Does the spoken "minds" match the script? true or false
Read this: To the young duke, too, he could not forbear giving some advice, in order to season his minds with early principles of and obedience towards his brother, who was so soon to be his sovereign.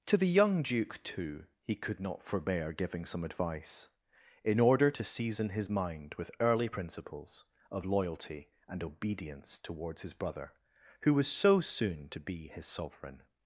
false